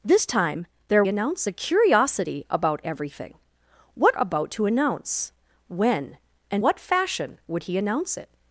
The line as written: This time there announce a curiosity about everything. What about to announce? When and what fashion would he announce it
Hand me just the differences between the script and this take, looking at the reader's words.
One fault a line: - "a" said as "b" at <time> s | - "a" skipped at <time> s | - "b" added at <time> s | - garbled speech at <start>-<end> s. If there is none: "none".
none